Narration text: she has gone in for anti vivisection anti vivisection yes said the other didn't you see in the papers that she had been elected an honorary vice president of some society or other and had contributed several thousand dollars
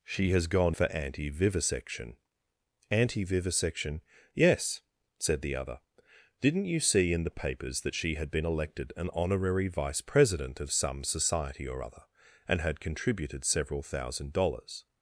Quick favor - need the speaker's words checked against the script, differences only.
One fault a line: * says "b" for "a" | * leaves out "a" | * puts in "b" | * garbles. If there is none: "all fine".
* leaves out "in"